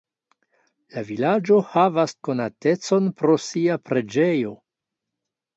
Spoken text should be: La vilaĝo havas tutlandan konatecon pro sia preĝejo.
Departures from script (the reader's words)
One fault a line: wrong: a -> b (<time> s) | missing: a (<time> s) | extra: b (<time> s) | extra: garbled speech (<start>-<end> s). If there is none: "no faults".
missing: tutlandan (2.1 s)